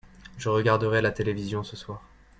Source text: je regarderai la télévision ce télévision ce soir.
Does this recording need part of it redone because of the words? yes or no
yes